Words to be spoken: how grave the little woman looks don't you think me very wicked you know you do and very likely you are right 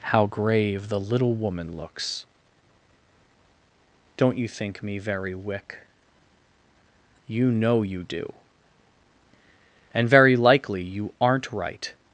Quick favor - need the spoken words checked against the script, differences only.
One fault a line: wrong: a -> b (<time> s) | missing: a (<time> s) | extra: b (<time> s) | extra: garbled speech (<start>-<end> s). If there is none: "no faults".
wrong: wicked -> wick (5.4 s)
wrong: are -> aren't (11.2 s)